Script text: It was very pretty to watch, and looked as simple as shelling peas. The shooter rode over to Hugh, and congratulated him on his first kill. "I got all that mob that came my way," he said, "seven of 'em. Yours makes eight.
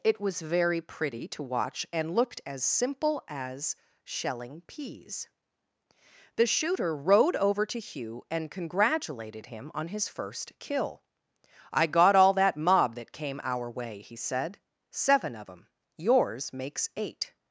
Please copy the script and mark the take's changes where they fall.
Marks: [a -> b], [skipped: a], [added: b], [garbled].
It was very pretty to watch, and looked as simple as shelling peas. The shooter rode over to Hugh, and congratulated him on his first kill. "I got all that mob that came [my -> our] way," he said, "seven of 'em. Yours makes eight.